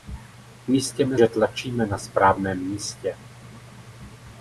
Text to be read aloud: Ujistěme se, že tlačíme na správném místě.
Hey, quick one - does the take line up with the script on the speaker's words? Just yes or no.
no